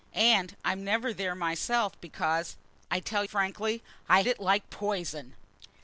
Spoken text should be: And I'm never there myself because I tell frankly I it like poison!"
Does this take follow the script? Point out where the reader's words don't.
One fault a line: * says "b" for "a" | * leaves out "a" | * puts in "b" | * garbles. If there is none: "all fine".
all fine